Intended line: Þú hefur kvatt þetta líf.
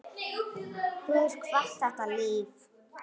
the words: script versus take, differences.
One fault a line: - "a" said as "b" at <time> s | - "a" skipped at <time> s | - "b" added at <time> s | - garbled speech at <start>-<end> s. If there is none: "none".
none